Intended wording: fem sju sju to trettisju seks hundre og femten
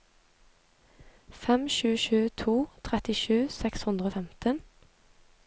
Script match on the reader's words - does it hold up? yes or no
yes